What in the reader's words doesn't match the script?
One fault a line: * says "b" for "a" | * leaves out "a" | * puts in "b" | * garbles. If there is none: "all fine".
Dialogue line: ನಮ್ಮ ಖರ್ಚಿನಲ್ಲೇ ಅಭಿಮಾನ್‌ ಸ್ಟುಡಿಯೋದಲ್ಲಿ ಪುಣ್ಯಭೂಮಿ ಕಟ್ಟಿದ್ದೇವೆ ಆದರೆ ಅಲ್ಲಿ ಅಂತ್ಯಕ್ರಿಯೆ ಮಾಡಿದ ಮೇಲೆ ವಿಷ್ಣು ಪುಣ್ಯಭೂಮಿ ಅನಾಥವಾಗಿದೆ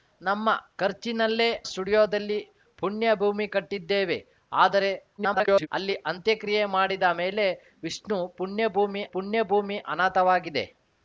* leaves out "ಅಭಿಮಾನ್"
* garbles
* puts in "ಪುಣ್ಯಭೂಮಿ"